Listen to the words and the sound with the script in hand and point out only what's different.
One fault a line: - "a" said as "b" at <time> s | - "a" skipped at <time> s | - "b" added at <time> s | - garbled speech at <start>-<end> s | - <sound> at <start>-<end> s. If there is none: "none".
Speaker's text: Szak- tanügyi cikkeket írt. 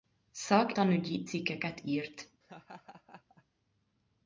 - laugh at 2.4-3.4 s